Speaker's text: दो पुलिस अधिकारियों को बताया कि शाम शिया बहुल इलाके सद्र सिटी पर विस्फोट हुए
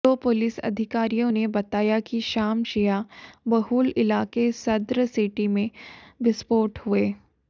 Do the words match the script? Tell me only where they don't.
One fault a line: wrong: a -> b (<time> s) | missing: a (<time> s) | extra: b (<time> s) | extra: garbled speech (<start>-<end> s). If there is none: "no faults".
wrong: को -> ने (1.3 s)
wrong: पर -> में (5.5 s)